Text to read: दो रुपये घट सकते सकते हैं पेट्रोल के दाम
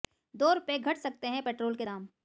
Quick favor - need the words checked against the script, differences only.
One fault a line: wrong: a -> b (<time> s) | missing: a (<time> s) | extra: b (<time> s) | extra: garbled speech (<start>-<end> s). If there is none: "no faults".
missing: सकते (1.3 s)